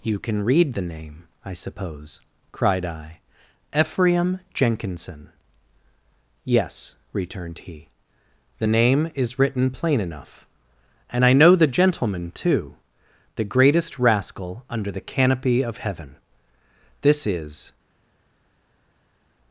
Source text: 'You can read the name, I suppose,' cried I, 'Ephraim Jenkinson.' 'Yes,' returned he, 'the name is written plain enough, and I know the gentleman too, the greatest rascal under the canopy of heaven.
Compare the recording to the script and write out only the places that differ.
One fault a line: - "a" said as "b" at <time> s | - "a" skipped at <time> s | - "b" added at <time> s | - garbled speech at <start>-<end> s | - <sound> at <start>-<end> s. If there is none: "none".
- "This is" added at 17.0 s